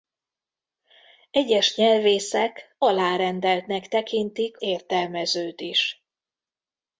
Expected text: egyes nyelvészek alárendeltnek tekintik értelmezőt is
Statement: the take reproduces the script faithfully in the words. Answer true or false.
true